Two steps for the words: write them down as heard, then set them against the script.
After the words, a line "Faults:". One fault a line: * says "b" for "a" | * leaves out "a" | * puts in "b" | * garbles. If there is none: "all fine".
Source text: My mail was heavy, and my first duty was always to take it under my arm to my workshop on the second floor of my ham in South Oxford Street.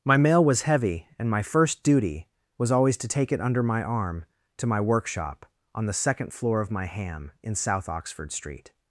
My mail was heavy, and my first duty was always to take it under my arm to my workshop on the second floor of my ham in South Oxford Street.
Faults:
all fine